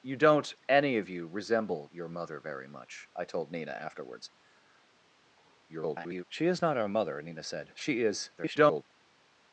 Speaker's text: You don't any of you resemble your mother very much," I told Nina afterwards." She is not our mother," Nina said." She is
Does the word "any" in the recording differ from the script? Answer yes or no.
no